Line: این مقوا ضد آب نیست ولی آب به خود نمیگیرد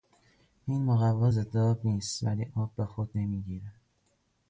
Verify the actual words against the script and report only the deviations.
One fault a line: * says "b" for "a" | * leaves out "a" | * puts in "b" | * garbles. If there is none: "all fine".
all fine